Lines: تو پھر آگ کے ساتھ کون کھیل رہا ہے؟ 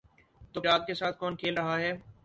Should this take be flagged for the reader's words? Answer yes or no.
yes